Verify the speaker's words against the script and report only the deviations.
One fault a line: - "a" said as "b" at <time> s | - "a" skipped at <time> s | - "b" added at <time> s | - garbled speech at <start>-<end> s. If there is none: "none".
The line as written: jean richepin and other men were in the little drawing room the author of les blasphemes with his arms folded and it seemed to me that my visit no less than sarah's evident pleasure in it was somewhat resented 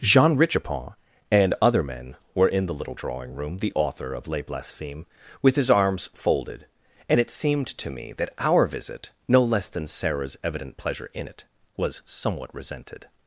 - "my" said as "our" at 8.4 s